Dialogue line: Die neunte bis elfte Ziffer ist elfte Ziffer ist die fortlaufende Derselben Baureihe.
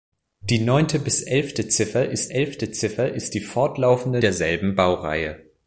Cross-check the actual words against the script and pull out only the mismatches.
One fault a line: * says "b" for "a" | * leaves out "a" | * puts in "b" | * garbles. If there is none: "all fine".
all fine